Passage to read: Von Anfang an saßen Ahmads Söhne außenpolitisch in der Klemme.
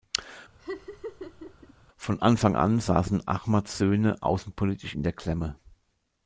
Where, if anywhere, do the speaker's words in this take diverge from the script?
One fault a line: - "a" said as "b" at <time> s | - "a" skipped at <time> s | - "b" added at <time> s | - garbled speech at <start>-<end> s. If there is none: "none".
none